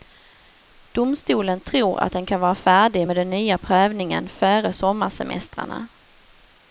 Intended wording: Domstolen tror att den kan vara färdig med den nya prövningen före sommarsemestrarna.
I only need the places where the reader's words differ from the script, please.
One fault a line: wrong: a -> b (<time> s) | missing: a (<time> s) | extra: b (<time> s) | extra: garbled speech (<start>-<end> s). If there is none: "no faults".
no faults